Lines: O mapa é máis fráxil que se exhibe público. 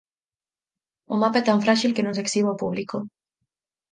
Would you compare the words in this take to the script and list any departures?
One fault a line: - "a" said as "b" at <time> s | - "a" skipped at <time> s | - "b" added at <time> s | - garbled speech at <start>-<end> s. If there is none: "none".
- "máis" said as "tan" at 1.5 s
- "non" added at 2.0 s
- "ao" added at 2.5 s